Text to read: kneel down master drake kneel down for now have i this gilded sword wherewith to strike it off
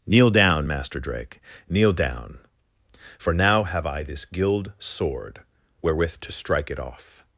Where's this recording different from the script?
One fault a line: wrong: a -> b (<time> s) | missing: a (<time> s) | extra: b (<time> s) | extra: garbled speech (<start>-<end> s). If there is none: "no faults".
wrong: gilded -> gild (4.2 s)